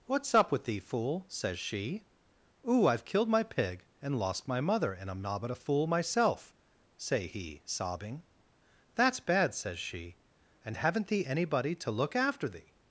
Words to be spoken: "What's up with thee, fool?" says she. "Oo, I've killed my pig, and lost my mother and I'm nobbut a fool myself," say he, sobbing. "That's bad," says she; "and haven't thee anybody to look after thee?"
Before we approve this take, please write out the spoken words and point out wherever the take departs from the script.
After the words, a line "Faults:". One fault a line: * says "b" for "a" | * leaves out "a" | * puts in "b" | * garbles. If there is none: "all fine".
"What's up with thee, fool?" says she. "Oo, I've killed my pig, and lost my mother and I'm nobbut a fool myself," say he, sobbing. "That's bad," says she; "and haven't thee anybody to look after thee?"
Faults:
all fine